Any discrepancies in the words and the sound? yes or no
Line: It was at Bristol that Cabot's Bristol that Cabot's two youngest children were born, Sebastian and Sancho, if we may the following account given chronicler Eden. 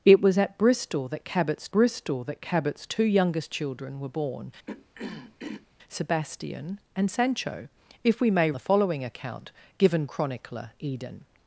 yes